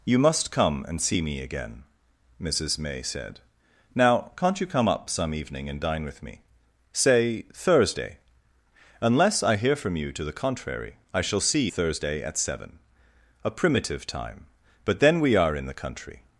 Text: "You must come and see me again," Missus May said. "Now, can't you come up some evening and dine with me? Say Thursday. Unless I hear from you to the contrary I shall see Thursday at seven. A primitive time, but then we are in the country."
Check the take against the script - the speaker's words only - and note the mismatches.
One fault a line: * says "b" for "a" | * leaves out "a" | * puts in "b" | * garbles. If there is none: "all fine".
all fine